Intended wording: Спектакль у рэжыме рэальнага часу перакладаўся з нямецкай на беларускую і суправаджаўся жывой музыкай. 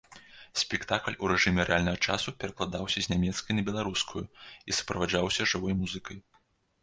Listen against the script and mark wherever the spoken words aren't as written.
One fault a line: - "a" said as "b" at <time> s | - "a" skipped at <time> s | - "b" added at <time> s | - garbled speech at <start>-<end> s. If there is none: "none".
none